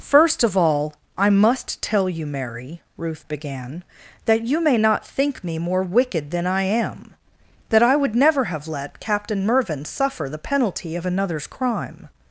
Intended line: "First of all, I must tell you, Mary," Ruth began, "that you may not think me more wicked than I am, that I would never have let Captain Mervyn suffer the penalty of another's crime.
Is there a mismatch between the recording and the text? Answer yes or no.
no